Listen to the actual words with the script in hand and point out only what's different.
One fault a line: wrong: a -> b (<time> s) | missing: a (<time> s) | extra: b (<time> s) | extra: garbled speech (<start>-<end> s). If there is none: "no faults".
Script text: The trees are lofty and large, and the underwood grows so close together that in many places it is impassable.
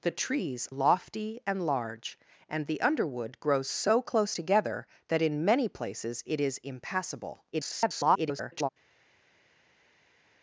missing: are (0.7 s)
extra: garbled speech (7.5-8.7 s)